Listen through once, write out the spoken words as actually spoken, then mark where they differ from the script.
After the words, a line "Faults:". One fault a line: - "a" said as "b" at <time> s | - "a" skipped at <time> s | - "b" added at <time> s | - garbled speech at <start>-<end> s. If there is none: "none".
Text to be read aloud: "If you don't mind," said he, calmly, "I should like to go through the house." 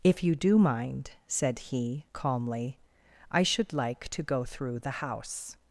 "If you do mind," said he, calmly, "I should like to go through the house."
Faults:
- "don't" said as "do" at 0.3 s